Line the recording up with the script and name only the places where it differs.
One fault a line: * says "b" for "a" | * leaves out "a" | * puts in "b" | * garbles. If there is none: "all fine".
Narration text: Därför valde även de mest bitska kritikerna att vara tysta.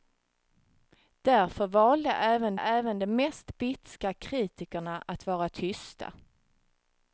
* puts in "även"